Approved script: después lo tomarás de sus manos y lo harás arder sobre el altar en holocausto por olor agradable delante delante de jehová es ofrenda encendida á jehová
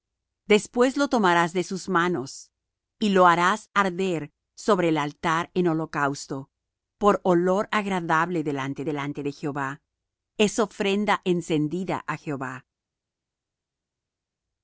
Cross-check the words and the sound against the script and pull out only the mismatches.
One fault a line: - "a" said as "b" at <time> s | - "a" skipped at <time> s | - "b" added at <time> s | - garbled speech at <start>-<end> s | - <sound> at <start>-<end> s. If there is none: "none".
none